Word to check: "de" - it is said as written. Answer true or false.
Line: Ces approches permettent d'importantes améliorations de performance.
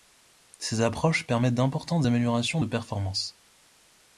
true